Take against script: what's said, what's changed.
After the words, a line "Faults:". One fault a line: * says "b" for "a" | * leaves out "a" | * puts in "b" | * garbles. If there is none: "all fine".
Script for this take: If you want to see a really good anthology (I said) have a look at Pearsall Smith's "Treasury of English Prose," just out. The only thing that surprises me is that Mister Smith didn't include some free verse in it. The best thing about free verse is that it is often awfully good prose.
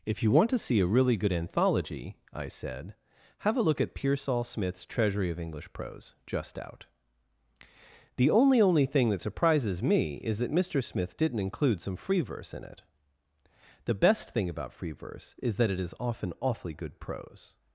If you want to see a really good anthology (I said) have a look at Pearsall Smith's "Treasury of English Prose," just out. The only only thing that surprises me is that Mister Smith didn't include some free verse in it. The best thing about free verse is that it is often awfully good prose.
Faults:
* puts in "only"